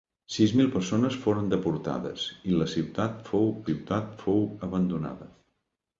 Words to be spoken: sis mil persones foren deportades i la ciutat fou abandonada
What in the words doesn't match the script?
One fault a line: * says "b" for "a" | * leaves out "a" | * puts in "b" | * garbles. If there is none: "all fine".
* puts in "ciutat fou"